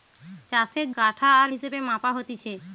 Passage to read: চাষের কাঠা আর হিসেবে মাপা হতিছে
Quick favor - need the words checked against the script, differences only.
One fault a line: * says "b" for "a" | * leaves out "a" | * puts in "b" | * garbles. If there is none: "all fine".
all fine